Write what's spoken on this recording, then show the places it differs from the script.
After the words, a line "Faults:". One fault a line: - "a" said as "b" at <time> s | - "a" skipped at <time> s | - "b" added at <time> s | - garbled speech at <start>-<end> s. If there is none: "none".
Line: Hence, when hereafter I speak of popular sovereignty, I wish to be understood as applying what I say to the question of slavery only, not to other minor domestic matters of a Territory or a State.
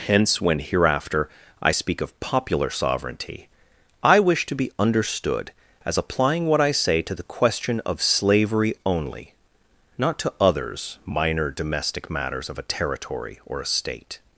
Hence, when hereafter I speak of popular sovereignty, I wish to be understood as applying what I say to the question of slavery only, not to others minor domestic matters of a Territory or a State.
Faults:
- "other" said as "others" at 10.4 s